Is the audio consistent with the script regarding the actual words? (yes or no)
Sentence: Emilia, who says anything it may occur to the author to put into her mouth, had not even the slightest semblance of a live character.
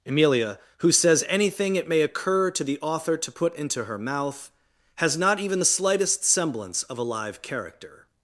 no